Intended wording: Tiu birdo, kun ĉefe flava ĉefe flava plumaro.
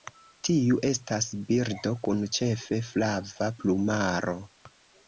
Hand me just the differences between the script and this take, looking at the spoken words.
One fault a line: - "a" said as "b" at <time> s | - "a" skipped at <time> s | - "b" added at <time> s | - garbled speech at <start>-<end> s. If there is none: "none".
- "estas" added at 0.9 s
- "ĉefe flava" skipped at 3.5 s